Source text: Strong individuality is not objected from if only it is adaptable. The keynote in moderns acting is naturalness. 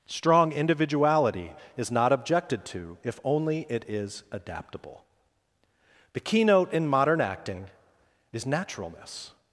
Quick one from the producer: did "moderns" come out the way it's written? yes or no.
no